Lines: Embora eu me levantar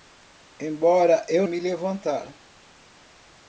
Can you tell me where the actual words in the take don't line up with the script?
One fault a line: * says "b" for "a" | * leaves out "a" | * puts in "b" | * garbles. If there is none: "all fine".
all fine